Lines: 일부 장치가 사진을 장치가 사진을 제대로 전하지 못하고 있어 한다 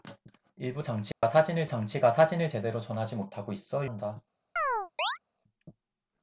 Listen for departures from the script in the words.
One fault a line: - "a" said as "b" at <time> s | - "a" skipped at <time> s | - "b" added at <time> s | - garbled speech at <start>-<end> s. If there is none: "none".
none